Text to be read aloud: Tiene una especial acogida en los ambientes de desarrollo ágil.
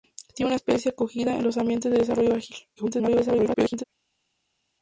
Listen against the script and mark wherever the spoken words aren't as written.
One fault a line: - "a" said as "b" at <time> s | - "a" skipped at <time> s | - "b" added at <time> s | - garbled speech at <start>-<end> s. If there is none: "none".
- garbled speech at 2.8-3.8 s